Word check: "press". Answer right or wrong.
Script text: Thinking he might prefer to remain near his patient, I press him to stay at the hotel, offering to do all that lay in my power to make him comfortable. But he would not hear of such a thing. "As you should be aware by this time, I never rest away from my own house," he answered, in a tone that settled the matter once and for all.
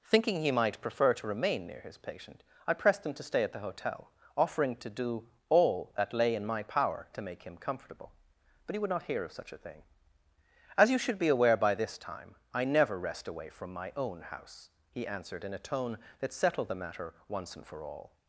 wrong